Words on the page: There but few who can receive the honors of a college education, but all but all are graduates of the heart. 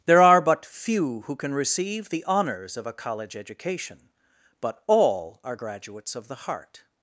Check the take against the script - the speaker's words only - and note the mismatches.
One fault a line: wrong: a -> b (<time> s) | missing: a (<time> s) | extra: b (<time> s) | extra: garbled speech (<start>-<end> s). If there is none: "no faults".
extra: are (0.2 s)
missing: but all (5.4 s)